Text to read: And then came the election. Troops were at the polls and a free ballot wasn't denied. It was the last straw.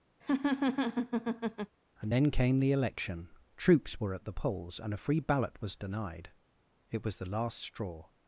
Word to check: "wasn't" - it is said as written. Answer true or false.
false